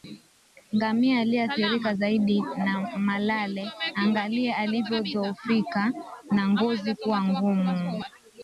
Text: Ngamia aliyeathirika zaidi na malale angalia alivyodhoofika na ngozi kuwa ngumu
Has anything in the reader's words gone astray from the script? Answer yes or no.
no